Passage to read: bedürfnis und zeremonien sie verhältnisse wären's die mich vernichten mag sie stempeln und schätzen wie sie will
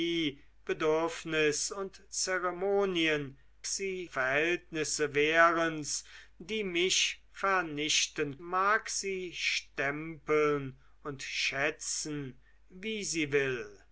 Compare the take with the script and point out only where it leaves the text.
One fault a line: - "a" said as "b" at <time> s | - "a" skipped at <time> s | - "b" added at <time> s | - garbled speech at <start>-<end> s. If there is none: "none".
none